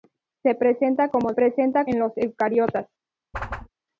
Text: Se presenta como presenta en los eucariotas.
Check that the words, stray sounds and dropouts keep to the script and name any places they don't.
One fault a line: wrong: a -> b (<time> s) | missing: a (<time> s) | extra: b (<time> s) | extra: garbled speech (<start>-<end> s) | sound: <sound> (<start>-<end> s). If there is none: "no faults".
sound: whoosh (3.3-3.7 s)